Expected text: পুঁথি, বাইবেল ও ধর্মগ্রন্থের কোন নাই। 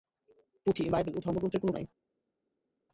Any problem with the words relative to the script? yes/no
no